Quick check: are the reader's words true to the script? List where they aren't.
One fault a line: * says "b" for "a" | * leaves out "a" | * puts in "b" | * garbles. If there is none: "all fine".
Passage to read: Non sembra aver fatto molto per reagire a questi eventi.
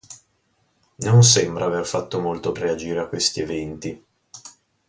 * leaves out "per"